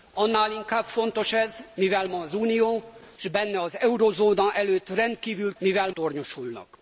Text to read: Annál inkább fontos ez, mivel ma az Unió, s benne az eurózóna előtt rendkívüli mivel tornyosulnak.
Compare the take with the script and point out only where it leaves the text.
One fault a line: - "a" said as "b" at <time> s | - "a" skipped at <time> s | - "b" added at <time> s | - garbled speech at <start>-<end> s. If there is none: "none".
none